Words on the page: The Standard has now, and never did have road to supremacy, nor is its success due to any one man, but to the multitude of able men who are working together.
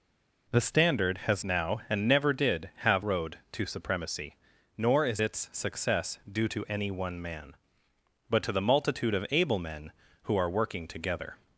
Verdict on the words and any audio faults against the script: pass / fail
pass